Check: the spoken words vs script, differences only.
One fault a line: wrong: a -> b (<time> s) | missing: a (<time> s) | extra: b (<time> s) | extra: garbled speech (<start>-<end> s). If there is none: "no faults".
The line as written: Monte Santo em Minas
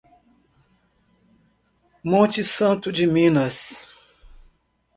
wrong: em -> de (2.9 s)